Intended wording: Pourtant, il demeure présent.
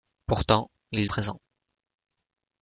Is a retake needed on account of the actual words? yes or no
yes